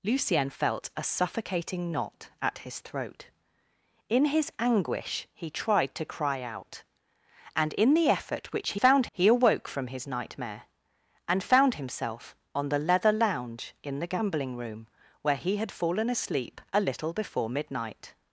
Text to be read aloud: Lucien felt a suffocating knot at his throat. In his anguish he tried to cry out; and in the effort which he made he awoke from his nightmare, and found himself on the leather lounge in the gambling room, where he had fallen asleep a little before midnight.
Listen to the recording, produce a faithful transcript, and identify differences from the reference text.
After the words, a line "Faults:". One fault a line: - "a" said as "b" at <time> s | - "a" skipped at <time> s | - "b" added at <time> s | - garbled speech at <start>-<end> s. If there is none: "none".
Lucien felt a suffocating knot at his throat. In his anguish he tried to cry out; and in the effort which he found he awoke from his nightmare, and found himself on the leather lounge in the gambling room, where he had fallen asleep a little before midnight.
Faults:
- "made" said as "found" at 8.7 s